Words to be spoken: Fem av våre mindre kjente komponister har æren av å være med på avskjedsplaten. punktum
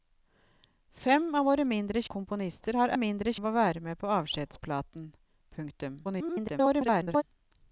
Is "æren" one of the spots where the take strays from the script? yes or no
yes